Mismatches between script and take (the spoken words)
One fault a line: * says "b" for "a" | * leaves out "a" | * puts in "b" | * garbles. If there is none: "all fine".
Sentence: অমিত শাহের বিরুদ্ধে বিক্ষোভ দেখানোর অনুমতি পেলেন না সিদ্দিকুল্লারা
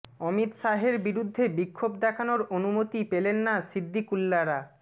all fine